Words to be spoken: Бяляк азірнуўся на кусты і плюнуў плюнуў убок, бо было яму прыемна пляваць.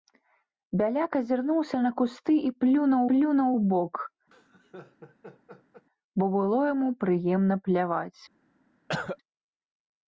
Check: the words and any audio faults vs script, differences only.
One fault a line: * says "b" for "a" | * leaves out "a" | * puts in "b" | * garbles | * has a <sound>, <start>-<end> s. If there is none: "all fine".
* has a laugh, 4.3-5.9 s
* has a cough, 8.9-9.2 s